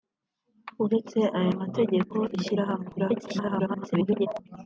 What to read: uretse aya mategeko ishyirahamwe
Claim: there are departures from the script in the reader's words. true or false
true